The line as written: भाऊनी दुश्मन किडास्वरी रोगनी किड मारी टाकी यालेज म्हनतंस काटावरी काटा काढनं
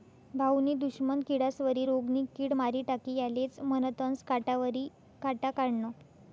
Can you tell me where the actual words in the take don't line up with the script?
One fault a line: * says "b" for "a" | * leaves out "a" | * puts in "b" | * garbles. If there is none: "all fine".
all fine